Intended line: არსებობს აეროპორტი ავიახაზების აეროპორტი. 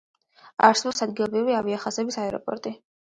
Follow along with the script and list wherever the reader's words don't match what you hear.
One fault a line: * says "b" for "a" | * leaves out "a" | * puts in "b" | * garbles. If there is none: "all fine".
* says "ადგილობრივი" for "აეროპორტი"